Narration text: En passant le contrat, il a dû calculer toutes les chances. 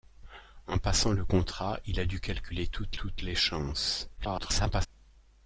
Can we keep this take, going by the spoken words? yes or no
no